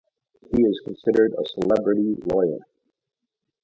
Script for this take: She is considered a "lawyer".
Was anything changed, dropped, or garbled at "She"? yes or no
yes